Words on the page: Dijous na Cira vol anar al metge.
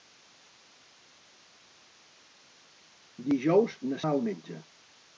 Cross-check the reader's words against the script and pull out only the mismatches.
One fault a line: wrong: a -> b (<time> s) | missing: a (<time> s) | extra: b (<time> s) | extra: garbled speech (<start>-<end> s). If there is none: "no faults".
missing: Cira vol anar (4.0 s)